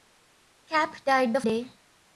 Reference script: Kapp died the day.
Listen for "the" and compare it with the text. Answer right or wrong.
right